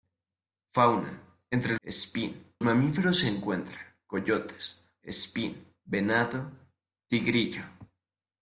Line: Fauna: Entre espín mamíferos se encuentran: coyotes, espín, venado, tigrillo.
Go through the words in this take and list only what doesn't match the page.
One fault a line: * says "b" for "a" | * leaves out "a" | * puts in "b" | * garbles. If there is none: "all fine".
all fine